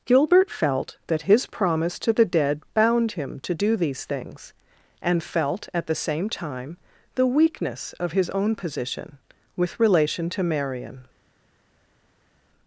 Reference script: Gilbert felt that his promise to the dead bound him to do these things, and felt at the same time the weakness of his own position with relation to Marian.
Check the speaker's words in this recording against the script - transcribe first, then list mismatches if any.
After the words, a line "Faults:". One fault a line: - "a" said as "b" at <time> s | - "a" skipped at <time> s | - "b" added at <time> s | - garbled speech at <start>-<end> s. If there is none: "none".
Gilbert felt that his promise to the dead bound him to do these things, and felt at the same time the weakness of his own position with relation to Marian.
Faults:
none